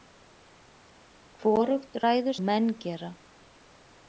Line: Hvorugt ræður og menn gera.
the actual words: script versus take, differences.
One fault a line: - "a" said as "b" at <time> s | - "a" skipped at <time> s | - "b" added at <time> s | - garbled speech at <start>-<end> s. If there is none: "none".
none